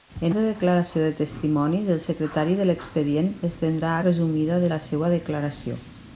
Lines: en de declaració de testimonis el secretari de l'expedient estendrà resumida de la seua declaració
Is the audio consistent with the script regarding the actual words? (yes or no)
yes